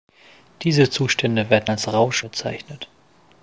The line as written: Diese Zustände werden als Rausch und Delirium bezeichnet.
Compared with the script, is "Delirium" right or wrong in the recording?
wrong